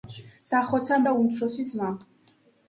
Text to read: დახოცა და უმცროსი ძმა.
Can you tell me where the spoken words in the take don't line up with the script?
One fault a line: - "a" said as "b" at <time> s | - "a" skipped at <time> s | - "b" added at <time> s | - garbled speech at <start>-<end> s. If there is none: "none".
none